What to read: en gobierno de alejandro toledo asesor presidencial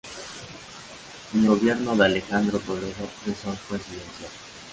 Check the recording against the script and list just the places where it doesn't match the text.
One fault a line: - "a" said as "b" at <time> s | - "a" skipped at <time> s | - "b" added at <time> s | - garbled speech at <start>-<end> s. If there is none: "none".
none